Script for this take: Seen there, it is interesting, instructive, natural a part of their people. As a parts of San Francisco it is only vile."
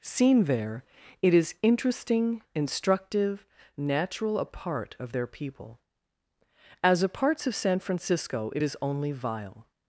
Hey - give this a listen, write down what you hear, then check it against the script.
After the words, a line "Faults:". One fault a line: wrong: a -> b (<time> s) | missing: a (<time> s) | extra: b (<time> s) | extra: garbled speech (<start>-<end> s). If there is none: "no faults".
Seen there, it is interesting, instructive, natural a part of their people. As a parts of San Francisco it is only vile."
Faults:
no faults